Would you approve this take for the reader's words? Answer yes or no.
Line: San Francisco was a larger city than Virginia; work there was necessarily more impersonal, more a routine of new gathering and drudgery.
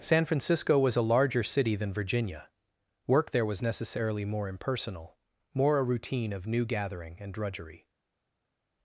yes